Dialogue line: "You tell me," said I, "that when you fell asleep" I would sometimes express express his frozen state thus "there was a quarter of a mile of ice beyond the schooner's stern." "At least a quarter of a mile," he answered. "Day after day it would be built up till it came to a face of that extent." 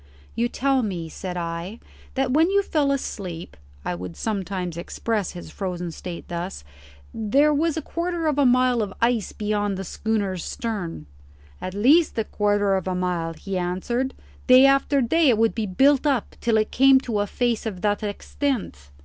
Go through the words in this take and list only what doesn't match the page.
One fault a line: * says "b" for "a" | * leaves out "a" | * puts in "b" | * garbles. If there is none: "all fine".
* leaves out "express"